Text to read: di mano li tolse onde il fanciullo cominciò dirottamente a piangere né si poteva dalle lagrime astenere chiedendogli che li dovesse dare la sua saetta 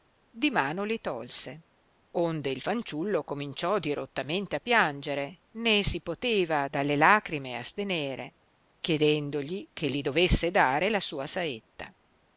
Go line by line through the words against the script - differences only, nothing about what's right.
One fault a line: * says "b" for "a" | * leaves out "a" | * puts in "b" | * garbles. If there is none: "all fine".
all fine